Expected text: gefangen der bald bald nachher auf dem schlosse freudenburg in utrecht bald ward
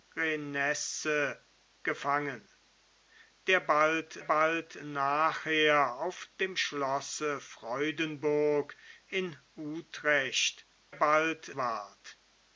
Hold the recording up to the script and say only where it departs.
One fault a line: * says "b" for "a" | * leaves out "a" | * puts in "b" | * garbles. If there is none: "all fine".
all fine